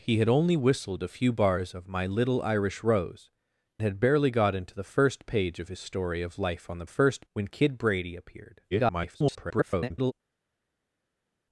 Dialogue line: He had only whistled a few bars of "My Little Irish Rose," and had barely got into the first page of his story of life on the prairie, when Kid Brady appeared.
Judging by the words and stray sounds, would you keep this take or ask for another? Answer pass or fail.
fail